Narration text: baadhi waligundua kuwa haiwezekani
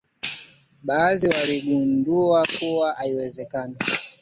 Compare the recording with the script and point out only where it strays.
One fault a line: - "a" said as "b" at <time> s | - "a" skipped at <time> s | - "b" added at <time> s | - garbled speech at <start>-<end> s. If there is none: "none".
none